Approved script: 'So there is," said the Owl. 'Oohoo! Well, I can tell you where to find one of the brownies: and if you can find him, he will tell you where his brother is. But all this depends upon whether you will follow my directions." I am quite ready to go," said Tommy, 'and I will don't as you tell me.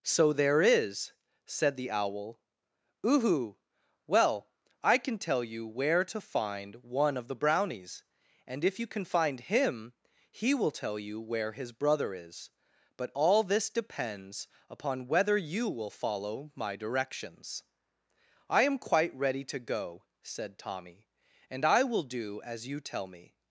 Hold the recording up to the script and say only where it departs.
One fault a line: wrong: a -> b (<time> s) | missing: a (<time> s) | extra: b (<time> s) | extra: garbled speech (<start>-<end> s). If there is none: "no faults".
wrong: don't -> do (22.0 s)